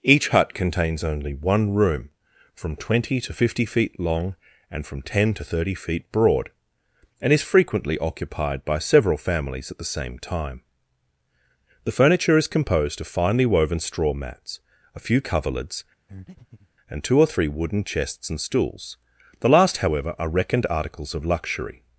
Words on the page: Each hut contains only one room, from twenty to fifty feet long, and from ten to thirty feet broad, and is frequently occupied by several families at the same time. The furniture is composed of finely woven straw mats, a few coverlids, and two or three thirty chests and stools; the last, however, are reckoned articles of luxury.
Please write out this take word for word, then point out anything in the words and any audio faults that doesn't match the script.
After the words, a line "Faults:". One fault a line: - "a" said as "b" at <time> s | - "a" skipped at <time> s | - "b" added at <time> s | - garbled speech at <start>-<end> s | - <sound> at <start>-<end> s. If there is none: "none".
Each hut contains only one room, from twenty to fifty feet long, and from ten to thirty feet broad, and is frequently occupied by several families at the same time. The furniture is composed of finely woven straw mats, a few coverlids, and two or three wooden chests and stools; the last, however, are reckoned articles of luxury.
Faults:
- breath at 16.1-16.7 s
- "thirty" said as "wooden" at 17.5 s